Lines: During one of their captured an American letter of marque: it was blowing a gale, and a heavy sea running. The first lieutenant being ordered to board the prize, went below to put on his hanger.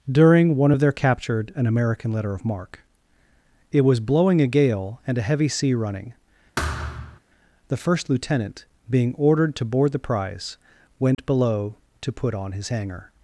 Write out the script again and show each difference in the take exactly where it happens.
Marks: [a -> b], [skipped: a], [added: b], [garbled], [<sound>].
During one of their captured an American letter of marque: it was blowing a gale, and a heavy sea running. [thud] The first lieutenant being ordered to board the prize, went [dropout] below to put on his hanger.